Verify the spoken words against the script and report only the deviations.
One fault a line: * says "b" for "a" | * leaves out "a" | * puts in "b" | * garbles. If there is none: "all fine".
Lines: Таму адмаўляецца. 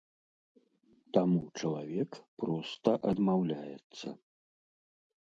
* puts in "чалавек проста"